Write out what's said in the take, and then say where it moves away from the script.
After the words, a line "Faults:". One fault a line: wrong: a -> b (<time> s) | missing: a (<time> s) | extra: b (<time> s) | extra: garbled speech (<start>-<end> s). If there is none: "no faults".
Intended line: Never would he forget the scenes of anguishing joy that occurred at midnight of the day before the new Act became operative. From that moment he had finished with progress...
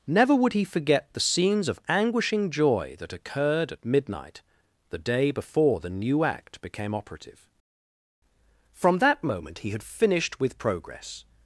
Never would he forget the scenes of anguishing joy that occurred at midnight the day before the new Act became operative. From that moment he had finished with progress...
Faults:
missing: of (4.4 s)